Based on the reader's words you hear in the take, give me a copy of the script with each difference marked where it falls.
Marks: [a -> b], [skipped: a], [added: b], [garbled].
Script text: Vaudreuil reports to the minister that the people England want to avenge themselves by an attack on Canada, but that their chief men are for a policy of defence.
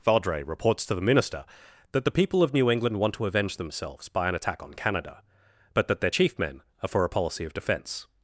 Vaudreuil reports to the minister that the people [added: of New] England want to avenge themselves by an attack on Canada, but that their chief men are for a policy of defence.